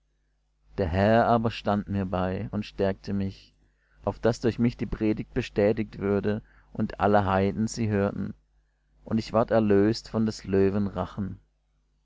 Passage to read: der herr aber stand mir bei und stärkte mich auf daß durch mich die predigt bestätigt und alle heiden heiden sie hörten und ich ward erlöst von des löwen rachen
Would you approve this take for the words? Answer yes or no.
no